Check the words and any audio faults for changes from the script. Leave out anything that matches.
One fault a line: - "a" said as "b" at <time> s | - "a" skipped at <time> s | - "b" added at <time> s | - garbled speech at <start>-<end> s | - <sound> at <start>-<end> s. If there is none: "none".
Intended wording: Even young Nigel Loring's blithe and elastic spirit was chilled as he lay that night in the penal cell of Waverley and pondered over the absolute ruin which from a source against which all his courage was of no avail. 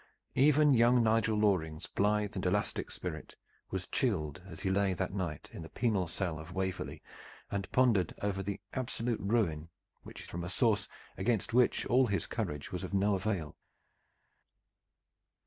none